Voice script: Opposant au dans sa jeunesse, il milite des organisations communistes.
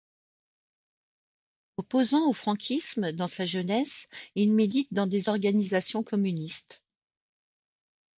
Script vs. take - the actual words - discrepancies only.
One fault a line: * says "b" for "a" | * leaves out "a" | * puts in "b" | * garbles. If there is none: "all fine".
* puts in "franquisme"
* puts in "dans"